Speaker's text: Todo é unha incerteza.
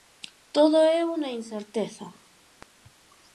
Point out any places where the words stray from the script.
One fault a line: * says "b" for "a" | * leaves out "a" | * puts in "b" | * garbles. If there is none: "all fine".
all fine